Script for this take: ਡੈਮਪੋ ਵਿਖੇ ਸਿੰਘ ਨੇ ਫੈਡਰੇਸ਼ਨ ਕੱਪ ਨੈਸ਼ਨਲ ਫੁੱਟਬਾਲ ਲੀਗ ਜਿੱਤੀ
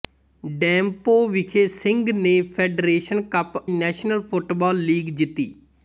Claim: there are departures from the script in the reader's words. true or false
false